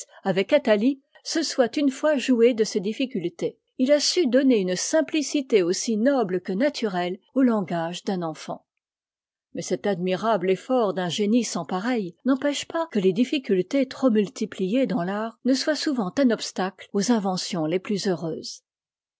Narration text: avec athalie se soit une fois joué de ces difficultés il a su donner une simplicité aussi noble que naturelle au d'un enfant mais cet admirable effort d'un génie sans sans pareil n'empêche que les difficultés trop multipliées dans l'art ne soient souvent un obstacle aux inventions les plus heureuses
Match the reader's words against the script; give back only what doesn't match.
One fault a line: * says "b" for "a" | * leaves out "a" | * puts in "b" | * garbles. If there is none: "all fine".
* puts in "langage"
* leaves out "sans"
* puts in "pas"